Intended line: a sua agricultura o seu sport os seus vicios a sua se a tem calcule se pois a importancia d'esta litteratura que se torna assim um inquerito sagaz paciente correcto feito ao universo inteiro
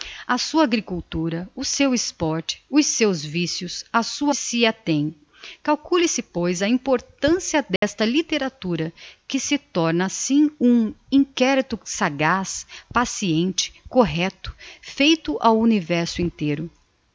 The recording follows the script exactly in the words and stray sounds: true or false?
false